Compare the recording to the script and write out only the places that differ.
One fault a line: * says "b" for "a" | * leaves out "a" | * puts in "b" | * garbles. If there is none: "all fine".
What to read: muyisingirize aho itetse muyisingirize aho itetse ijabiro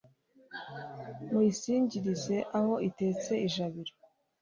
* leaves out "muyisingirize aho itetse"